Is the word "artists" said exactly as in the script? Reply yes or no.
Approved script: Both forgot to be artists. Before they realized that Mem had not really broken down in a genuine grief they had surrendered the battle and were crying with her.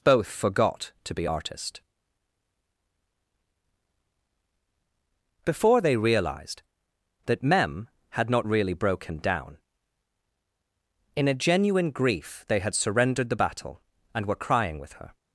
no